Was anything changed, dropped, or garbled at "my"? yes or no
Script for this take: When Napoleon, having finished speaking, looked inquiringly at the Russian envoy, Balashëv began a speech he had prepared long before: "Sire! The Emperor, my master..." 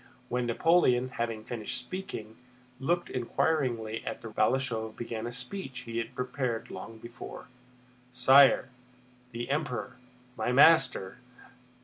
no